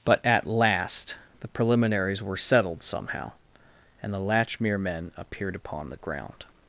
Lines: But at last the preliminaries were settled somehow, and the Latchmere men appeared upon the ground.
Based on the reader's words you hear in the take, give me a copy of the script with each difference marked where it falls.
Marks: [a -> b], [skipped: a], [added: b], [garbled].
But at last the preliminaries were settled somehow, and the Latchmere men appeared upon the ground.